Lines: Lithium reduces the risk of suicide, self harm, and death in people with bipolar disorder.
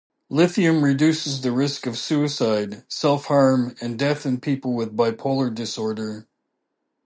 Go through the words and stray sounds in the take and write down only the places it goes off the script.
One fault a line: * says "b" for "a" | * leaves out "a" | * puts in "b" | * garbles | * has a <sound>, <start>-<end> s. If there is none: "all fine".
all fine